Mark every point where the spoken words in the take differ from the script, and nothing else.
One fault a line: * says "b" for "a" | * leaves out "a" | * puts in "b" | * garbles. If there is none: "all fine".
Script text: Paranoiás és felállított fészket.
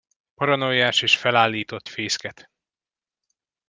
all fine